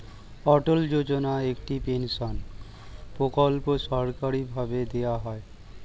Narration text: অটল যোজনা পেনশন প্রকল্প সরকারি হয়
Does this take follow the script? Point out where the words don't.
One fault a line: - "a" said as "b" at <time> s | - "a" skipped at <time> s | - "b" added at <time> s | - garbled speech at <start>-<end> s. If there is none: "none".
- "একটি" added at 1.5 s
- "ভাবে দেওয়া" added at 4.5 s